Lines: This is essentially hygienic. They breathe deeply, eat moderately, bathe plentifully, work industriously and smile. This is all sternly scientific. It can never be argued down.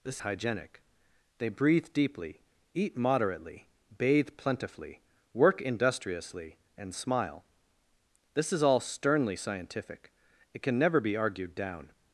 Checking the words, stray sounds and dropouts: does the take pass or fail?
fail